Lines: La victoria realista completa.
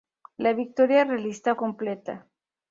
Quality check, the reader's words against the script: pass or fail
pass